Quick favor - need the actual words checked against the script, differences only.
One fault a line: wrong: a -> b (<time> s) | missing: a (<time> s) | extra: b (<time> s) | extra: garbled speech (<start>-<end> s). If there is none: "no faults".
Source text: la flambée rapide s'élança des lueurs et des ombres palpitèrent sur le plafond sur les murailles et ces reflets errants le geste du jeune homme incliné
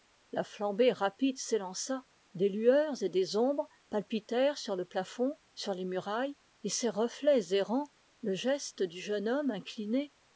no faults